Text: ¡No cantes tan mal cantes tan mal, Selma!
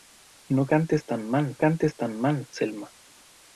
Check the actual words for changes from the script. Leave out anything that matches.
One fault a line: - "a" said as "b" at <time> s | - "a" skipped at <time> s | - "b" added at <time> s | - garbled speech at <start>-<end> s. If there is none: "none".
none